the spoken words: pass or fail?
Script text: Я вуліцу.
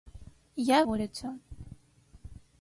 pass